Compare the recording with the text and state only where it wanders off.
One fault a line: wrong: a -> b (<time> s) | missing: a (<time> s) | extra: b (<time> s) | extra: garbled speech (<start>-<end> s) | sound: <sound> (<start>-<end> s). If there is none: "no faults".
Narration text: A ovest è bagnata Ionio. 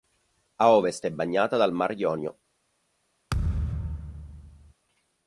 extra: dal Mar (1.6 s)
sound: thud (3.3-4.7 s)